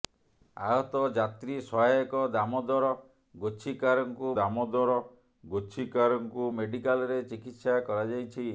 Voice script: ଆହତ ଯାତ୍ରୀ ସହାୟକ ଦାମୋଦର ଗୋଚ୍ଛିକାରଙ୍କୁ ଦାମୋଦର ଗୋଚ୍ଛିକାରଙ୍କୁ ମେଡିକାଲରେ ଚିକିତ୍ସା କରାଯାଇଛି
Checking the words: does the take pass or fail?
pass